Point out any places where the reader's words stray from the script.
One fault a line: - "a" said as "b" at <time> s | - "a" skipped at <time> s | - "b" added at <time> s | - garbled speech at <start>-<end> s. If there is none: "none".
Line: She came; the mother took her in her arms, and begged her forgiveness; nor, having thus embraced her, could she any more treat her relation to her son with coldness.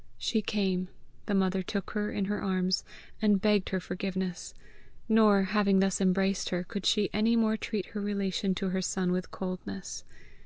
none